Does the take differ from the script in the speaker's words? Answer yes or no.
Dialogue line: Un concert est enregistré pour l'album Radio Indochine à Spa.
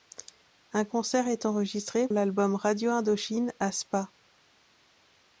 yes